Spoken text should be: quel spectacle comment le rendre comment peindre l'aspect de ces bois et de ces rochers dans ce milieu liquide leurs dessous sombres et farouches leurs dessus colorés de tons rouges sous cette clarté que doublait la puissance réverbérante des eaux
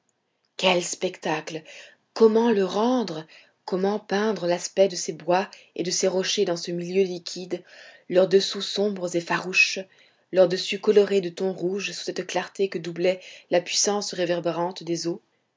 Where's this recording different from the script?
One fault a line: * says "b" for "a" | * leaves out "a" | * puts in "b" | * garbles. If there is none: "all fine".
all fine